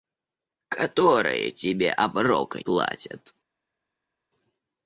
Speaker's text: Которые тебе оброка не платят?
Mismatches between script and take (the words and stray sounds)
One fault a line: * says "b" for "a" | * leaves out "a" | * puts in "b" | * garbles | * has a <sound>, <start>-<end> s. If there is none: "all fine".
* leaves out "не"